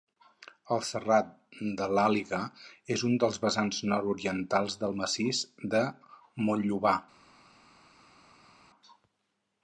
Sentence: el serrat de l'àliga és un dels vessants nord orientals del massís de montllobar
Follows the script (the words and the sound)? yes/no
yes